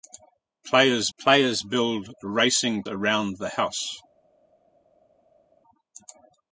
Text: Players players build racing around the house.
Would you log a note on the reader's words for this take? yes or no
no